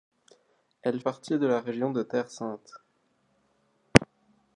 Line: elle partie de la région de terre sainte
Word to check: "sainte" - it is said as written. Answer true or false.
true